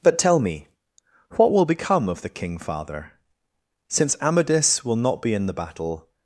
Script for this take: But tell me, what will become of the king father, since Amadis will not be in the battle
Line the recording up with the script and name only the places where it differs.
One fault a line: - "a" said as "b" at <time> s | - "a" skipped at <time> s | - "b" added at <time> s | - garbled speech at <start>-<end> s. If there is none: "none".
none